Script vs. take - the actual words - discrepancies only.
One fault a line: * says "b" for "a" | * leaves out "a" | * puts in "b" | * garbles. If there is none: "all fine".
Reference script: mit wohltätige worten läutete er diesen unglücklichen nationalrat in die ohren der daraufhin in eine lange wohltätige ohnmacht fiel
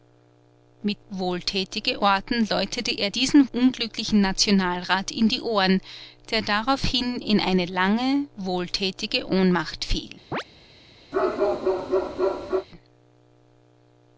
all fine